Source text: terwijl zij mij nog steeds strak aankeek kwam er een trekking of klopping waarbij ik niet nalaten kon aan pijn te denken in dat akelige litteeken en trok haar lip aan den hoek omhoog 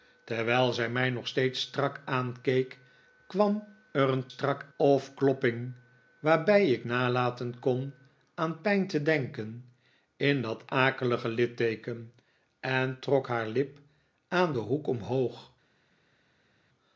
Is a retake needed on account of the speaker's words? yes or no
yes